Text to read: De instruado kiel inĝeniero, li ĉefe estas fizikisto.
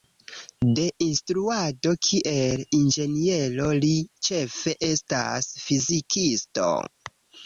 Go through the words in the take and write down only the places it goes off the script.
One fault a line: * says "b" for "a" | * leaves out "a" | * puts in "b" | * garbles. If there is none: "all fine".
all fine